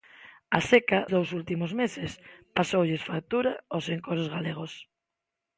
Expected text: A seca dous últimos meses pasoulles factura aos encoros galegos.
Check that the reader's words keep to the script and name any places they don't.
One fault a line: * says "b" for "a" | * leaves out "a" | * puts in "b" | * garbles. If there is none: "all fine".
all fine